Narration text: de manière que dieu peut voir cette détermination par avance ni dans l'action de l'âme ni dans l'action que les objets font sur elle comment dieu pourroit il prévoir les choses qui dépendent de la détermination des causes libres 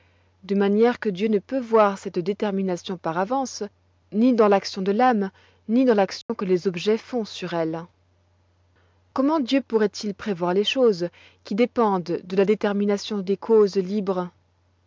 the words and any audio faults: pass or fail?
fail